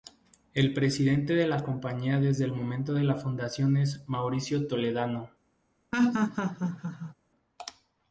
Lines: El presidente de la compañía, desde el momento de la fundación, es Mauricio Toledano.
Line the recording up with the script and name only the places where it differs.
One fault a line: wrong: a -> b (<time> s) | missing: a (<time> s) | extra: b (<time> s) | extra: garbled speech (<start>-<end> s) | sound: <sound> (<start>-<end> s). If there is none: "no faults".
sound: laugh (5.9-7.1 s)